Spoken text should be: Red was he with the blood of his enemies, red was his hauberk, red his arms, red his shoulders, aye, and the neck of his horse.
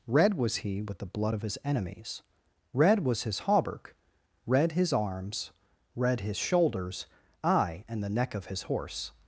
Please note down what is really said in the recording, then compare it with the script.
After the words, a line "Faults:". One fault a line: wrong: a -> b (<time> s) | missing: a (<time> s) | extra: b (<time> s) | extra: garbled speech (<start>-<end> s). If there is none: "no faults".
Red was he with the blood of his enemies, red was his hauberk, red his arms, red his shoulders, aye, and the neck of his horse.
Faults:
no faults